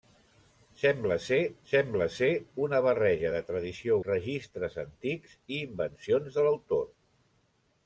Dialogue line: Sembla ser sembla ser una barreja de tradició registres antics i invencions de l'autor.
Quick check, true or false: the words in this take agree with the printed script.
true